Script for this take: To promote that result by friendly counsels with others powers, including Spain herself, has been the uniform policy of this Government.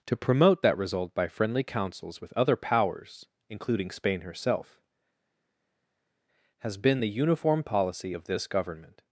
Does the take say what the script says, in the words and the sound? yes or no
no